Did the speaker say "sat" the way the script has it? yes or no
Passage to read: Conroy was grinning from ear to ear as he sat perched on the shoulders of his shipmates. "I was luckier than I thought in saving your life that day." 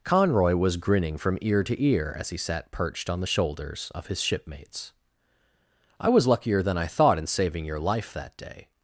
yes